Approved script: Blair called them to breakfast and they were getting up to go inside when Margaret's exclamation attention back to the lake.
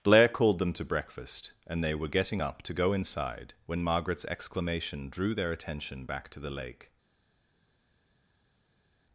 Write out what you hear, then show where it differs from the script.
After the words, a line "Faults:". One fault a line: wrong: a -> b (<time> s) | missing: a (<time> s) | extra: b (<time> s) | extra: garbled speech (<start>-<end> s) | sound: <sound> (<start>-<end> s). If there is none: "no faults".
Blair called them to breakfast and they were getting up to go inside when Margaret's exclamation drew their attention back to the lake.
Faults:
extra: drew their (5.1 s)